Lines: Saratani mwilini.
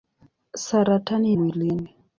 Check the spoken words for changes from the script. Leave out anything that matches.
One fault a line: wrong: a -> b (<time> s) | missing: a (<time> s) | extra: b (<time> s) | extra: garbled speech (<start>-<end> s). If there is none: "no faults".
no faults